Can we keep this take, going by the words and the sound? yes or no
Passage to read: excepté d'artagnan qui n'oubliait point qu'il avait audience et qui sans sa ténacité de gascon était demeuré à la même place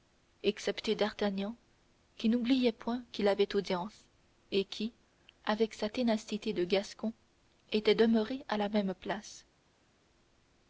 no